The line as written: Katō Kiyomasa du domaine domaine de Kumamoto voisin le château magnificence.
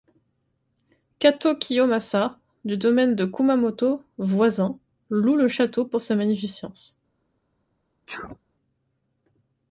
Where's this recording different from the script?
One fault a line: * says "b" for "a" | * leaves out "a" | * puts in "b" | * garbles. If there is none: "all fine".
* leaves out "domaine"
* puts in "loue"
* puts in "pour sa"